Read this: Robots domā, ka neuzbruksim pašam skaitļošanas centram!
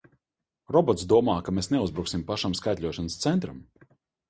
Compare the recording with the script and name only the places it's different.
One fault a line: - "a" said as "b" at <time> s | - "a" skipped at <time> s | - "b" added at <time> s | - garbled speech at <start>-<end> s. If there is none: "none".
- "mēs" added at 1.6 s